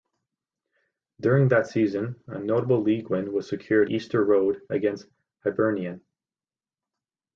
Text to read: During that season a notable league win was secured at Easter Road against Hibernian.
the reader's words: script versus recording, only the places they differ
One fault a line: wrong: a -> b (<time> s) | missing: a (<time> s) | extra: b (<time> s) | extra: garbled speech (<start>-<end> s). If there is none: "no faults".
missing: at (3.9 s)